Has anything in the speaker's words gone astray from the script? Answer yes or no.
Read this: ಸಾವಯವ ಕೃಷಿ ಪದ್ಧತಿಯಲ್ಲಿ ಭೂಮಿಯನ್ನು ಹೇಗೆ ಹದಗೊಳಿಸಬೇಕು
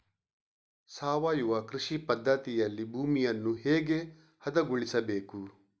no